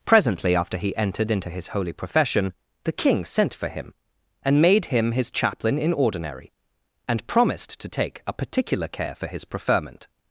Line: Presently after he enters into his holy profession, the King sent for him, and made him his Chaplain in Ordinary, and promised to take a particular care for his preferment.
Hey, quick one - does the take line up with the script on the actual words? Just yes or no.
no